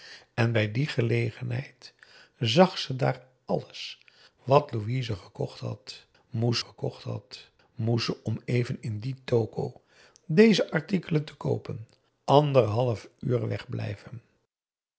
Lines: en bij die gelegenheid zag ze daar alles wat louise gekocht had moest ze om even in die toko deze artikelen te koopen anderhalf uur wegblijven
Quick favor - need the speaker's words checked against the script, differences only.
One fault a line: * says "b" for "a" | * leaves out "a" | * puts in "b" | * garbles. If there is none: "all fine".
* puts in "gekocht had moest"